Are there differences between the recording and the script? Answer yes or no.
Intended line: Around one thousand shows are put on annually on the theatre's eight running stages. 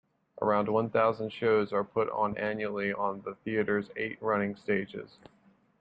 no